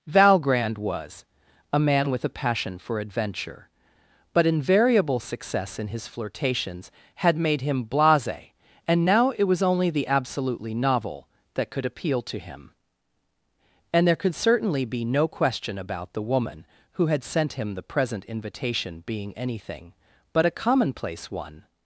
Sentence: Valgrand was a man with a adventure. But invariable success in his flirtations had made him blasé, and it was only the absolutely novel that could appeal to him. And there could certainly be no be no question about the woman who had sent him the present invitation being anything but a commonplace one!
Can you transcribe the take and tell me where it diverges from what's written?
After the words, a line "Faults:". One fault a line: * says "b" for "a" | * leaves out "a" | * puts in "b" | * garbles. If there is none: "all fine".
Valgrand was a man with a passion for adventure. But invariable success in his flirtations had made him blasé, and now it was only the absolutely novel that could appeal to him. And there could certainly be no question about the woman who had sent him the present invitation being anything but a commonplace one!
Faults:
* puts in "passion for"
* puts in "now"
* leaves out "be no"